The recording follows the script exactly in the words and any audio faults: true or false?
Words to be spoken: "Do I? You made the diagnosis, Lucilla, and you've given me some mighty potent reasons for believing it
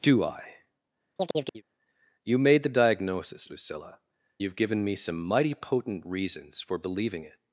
false